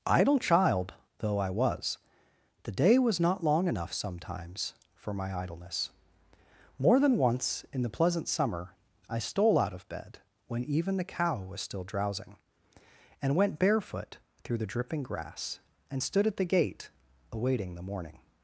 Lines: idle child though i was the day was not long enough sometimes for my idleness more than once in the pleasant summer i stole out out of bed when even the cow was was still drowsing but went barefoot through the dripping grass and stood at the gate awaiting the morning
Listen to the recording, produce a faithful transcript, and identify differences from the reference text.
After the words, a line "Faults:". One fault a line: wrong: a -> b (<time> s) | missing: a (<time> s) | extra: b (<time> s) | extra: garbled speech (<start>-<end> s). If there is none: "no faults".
idle child though i was the day was not long enough sometimes for my idleness more than once in the pleasant summer i stole out of bed when even the cow was still drowsing and went barefoot through the dripping grass and stood at the gate awaiting the morning
Faults:
missing: out (9.7 s)
missing: was (11.6 s)
wrong: but -> and (13.2 s)